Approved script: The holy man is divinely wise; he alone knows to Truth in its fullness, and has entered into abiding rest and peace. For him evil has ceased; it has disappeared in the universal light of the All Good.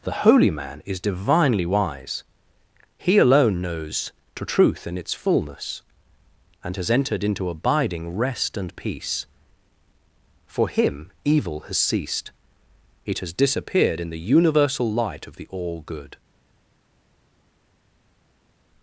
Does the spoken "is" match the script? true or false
true